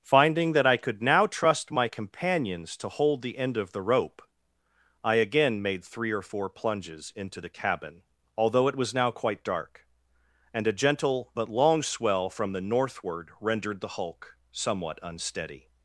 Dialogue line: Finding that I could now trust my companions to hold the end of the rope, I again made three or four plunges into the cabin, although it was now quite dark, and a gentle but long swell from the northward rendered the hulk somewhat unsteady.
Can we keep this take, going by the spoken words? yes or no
yes